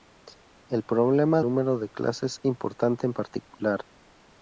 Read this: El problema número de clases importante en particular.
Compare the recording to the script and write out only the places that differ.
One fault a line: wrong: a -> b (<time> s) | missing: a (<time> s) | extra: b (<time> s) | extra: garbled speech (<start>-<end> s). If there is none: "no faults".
no faults